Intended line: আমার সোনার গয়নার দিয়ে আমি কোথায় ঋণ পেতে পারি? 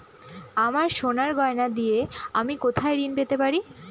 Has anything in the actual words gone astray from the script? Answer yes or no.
no